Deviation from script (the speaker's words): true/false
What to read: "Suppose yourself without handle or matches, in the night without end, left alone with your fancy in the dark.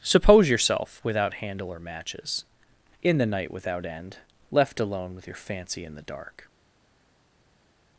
false